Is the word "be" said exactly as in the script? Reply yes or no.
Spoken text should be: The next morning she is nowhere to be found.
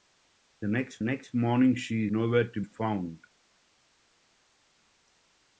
no